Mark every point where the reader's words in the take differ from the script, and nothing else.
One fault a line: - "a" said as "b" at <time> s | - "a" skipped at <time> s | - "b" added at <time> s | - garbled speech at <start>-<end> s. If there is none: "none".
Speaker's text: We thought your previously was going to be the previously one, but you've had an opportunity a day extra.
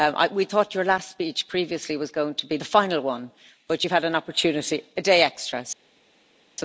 - "last speech" added at 0.8 s
- "previously" said as "final" at 2.6 s